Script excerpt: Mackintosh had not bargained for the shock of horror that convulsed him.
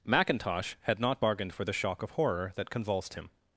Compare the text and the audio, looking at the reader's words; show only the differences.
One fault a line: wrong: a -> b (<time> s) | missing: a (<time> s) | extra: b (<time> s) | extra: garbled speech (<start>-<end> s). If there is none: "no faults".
no faults